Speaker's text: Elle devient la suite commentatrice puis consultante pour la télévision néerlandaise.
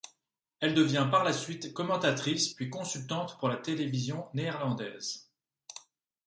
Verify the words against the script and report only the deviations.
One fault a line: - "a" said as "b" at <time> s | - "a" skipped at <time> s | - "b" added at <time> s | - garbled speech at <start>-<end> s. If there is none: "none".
- "par" added at 1.1 s